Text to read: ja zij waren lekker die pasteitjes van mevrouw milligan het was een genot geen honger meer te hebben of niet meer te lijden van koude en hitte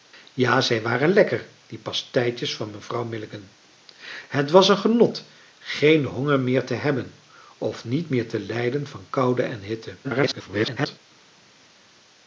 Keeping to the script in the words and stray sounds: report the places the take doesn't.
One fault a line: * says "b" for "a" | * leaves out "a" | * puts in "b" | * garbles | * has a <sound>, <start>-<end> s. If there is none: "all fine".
* garbles